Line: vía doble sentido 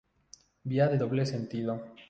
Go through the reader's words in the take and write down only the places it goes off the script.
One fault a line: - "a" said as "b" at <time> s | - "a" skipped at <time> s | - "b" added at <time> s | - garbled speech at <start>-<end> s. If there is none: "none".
- "de" added at 0.9 s